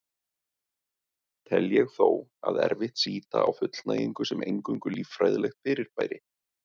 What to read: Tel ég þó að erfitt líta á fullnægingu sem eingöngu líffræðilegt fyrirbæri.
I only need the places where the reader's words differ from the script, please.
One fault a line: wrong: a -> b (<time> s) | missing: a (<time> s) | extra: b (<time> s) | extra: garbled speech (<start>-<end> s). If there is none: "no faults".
no faults